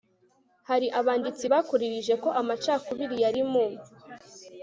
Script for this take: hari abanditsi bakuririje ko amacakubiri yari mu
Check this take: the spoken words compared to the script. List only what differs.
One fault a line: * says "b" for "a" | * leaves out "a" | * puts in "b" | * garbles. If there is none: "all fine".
all fine